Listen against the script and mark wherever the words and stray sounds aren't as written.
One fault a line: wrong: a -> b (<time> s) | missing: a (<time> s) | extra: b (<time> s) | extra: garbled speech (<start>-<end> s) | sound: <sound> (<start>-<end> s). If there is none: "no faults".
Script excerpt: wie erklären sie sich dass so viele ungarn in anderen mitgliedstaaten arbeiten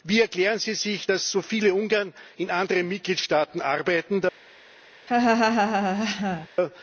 sound: laugh (5.1-6.5 s)